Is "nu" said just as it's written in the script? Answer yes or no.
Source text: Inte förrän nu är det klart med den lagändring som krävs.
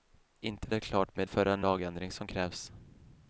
no